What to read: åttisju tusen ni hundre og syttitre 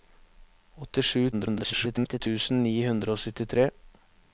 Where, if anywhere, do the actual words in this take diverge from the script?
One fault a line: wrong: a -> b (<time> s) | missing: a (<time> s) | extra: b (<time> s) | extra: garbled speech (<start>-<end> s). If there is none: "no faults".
extra: garbled speech (1.3-2.2 s)